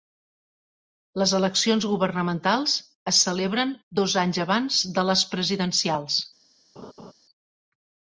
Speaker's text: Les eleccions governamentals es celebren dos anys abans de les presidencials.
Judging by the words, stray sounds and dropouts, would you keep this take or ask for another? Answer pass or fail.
fail